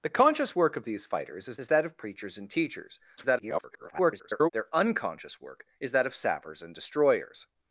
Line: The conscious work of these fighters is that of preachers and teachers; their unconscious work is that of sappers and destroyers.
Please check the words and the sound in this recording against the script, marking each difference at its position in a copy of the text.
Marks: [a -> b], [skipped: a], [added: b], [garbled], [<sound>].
The conscious work of these fighters is [added: is] that of preachers and teachers; [garbled] their unconscious work is that of sappers and destroyers.